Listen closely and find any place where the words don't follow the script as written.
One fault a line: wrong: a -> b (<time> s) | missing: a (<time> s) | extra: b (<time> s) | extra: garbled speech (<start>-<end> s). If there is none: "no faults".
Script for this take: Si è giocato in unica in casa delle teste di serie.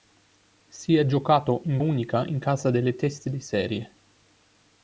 no faults